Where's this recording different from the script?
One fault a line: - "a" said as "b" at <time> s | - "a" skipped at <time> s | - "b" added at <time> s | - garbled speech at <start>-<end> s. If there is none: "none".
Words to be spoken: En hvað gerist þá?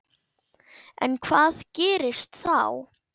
none